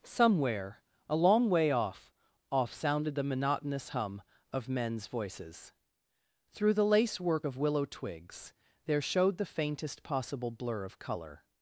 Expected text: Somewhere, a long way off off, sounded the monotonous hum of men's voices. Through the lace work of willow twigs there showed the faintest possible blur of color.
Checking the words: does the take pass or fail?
pass